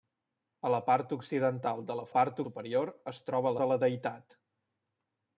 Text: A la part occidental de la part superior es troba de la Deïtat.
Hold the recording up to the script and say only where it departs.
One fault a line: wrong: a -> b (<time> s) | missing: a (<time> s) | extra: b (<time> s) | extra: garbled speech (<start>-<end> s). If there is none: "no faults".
no faults